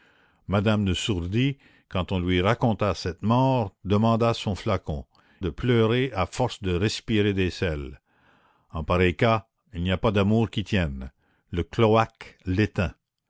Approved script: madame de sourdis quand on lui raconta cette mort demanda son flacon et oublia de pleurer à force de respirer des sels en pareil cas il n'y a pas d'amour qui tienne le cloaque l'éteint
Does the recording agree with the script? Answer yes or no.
no